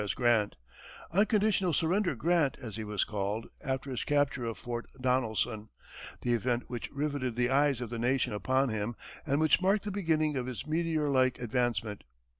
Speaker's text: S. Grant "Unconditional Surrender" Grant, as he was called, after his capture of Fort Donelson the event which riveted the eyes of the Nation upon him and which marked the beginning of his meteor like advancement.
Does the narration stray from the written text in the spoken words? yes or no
no